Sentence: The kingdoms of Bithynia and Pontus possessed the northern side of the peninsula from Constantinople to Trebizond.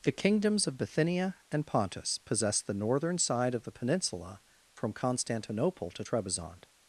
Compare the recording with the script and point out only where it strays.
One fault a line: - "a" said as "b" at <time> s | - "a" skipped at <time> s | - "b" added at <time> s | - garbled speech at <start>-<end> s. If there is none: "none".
none